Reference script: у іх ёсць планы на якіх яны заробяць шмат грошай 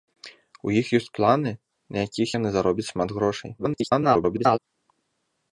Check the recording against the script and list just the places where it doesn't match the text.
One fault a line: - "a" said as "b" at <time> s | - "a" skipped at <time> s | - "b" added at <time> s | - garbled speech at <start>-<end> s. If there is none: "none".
- garbled speech at 3.6-4.6 s